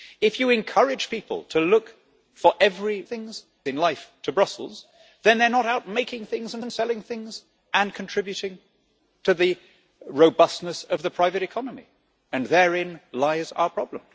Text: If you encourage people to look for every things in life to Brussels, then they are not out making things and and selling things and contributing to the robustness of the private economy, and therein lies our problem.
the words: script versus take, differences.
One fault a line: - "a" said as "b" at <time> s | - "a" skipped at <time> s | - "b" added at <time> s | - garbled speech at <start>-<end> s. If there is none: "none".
none